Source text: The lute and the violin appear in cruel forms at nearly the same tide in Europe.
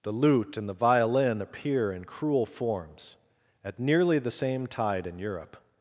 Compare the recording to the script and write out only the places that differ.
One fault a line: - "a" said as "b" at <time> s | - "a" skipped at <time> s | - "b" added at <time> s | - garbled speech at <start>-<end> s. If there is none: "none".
none